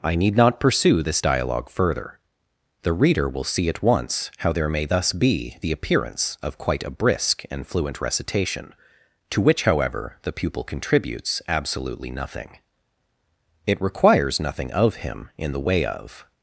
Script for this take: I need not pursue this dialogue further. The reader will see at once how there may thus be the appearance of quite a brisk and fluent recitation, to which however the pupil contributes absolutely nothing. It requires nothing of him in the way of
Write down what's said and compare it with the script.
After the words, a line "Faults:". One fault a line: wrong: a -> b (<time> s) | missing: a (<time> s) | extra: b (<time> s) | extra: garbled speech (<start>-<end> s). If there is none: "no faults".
I need not pursue this dialogue further. The reader will see at once how there may thus be the appearance of quite a brisk and fluent recitation, to which however the pupil contributes absolutely nothing. It requires nothing of him in the way of
Faults:
no faults